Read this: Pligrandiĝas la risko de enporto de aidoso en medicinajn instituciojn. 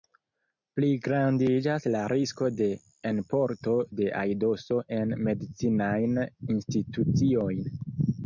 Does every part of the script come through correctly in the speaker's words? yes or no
yes